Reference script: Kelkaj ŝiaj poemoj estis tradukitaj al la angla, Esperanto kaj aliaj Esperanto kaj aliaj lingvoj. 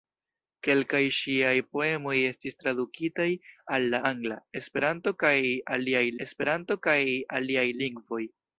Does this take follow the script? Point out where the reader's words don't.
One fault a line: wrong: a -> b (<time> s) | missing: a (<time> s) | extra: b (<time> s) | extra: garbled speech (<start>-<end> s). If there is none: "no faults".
no faults